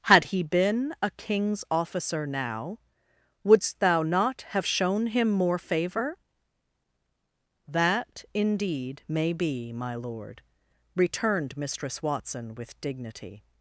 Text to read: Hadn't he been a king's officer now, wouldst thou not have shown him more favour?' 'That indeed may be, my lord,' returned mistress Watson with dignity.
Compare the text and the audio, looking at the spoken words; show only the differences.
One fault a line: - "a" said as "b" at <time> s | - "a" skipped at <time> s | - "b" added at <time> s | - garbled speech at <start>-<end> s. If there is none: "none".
- "Hadn't" said as "Had" at 0.1 s